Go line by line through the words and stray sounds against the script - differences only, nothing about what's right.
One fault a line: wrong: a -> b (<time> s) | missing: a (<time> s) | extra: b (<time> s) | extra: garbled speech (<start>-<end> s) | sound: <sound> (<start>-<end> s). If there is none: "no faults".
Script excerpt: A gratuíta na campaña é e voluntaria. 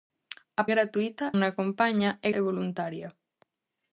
no faults